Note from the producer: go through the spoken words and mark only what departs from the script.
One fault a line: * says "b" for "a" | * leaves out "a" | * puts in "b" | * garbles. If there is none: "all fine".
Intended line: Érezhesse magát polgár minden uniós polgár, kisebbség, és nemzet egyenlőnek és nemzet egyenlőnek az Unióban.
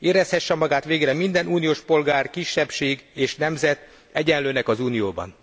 * says "végre" for "polgár"
* leaves out "és nemzet egyenlőnek"